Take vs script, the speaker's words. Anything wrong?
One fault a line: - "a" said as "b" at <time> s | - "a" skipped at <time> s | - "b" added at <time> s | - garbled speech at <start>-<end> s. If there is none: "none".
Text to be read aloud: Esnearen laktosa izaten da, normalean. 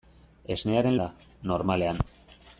- "laktosa izaten" skipped at 1.0 s